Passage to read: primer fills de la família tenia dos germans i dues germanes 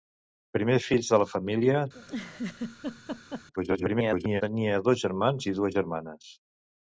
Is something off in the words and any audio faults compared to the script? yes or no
yes